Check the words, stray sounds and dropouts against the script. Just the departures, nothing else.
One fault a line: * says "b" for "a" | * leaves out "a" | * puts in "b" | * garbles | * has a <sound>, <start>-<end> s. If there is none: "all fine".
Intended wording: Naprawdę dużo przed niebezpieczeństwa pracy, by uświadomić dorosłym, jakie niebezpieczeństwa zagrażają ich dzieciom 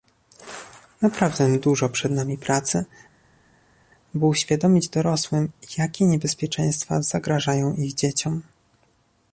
* says "nami" for "niebezpieczeństwa"